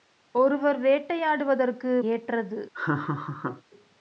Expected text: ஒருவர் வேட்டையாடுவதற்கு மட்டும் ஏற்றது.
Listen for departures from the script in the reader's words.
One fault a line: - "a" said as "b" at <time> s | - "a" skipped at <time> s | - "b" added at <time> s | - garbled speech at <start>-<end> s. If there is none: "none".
- "மட்டும்" skipped at 2.0 s